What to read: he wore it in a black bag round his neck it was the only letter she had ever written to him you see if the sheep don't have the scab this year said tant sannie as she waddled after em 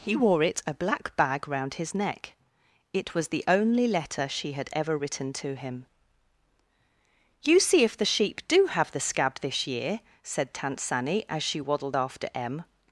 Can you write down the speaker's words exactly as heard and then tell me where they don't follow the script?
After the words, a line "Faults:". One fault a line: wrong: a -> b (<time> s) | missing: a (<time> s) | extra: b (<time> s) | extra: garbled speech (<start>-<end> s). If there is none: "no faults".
he wore it a black bag round his neck it was the only letter she had ever written to him you see if the sheep do have the scab this year said tant sannie as she waddled after em
Faults:
missing: in (0.6 s)
wrong: don't -> do (8.5 s)